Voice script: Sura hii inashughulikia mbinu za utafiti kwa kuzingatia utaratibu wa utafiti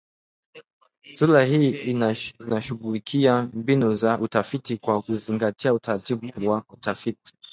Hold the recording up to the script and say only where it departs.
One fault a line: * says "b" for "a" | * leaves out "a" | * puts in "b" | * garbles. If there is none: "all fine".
all fine